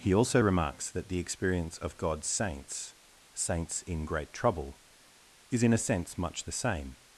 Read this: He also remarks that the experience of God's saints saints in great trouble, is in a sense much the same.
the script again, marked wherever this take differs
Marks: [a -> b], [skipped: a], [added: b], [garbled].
He also remarks that the experience of God's saints saints in great trouble, is in a sense much the same.